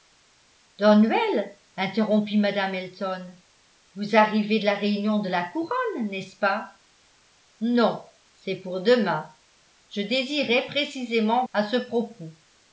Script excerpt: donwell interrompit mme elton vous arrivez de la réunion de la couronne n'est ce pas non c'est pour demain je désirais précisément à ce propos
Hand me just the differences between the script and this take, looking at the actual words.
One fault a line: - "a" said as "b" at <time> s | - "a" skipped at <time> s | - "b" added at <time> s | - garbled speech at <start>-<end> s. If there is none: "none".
none